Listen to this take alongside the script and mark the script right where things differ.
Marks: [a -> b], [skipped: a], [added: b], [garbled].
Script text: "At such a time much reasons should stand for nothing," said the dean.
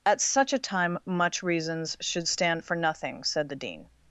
"At such a time much reasons should stand for nothing," said the dean.